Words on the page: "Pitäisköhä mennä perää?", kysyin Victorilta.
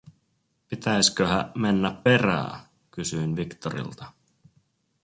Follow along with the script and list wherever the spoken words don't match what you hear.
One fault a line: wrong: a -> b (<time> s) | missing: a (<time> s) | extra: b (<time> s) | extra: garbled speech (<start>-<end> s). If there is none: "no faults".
no faults